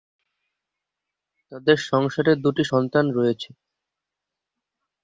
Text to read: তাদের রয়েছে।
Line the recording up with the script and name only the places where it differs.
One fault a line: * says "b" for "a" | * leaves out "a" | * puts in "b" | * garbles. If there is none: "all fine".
* puts in "সংসারে দুটি সন্তান"